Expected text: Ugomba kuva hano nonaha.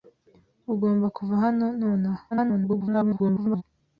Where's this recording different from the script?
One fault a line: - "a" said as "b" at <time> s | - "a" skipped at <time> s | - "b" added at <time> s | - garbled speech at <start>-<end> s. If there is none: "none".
- garbled speech at 2.3-3.6 s